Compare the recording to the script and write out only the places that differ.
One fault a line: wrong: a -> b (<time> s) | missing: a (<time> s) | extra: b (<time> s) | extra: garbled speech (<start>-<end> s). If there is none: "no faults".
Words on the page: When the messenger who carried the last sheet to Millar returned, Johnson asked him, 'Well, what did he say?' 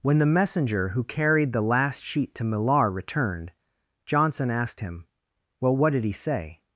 no faults